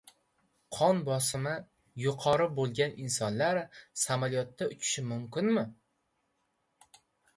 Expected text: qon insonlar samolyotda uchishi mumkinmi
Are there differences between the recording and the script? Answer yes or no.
yes